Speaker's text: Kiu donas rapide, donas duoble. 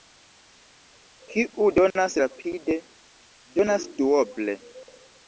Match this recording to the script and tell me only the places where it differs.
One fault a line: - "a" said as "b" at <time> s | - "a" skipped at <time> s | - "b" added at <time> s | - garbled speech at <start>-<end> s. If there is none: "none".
none